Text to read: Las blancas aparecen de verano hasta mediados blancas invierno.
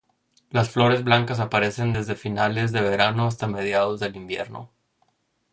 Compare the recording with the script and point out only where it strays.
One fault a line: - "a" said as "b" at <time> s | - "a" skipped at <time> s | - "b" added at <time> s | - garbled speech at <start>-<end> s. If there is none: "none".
- "flores" added at 0.7 s
- "desde finales" added at 1.9 s
- "blancas" said as "del" at 4.0 s